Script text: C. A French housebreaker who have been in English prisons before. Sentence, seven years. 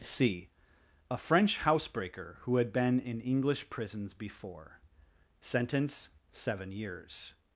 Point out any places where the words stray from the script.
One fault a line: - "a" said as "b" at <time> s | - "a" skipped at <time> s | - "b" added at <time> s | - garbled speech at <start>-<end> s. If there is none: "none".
- "have" said as "had" at 2.6 s